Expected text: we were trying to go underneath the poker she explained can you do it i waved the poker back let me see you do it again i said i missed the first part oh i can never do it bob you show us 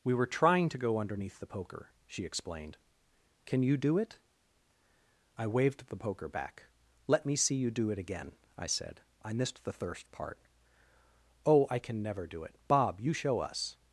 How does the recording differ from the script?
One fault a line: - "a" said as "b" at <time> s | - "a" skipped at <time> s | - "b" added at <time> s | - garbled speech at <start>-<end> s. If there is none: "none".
- "first" said as "thirst" at 9.7 s